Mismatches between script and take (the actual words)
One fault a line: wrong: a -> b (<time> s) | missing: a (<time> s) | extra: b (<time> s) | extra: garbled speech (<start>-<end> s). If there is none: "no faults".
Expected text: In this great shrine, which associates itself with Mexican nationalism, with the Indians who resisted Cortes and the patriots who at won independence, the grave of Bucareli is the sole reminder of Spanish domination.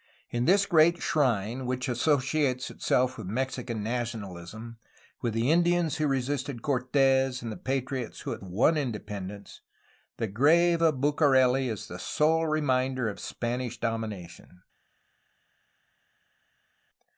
no faults